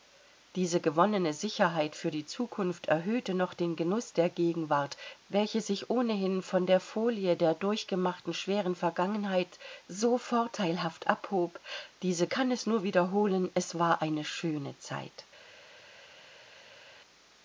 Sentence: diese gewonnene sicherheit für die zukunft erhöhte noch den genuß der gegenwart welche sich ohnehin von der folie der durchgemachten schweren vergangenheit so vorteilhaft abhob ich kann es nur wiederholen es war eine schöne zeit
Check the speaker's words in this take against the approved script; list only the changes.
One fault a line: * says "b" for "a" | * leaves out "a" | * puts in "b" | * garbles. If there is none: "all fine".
* says "diese" for "ich"